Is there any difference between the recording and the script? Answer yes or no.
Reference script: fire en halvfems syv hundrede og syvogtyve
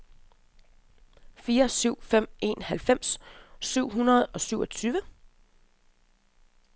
yes